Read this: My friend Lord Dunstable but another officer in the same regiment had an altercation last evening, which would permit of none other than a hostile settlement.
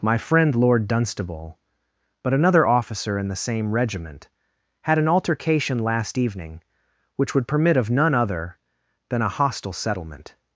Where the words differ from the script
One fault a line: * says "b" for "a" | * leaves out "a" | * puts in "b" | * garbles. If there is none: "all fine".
all fine